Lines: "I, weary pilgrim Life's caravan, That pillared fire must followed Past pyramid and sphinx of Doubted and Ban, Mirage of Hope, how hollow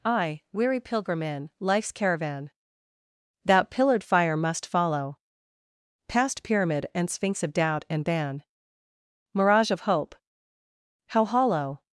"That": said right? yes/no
yes